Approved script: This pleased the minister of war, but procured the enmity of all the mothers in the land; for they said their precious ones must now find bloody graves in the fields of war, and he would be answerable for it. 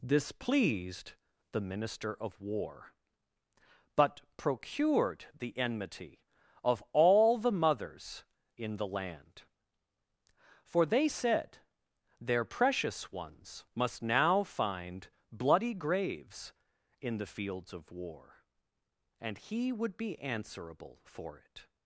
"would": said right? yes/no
yes